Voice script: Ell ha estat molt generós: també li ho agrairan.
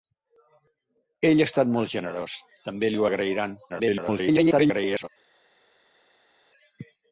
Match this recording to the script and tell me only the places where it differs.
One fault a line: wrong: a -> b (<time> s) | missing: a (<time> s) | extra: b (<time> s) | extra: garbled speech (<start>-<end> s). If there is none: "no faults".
extra: garbled speech (3.7-5.1 s)